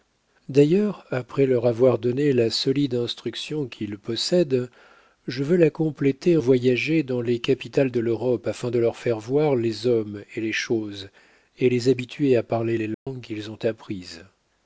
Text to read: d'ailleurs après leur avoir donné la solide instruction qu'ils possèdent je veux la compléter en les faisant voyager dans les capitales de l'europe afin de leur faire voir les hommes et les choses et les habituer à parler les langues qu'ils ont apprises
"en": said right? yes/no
no